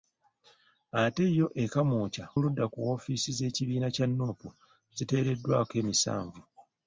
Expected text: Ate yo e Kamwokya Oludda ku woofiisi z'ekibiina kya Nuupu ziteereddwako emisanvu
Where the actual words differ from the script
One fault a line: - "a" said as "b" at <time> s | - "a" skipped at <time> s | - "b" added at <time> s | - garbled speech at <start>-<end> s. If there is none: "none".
none